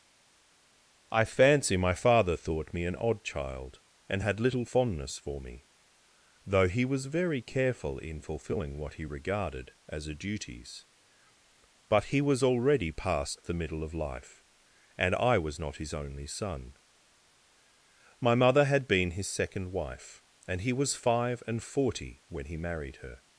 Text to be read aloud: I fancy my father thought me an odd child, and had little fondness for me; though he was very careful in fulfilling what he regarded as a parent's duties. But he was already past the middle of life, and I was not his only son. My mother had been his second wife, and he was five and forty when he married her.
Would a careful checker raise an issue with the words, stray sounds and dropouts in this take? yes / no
yes